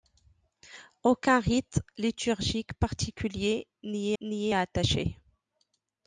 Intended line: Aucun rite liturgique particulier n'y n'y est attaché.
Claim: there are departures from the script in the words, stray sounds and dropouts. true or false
false